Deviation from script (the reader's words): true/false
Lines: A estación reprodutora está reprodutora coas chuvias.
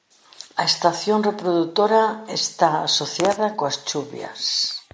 true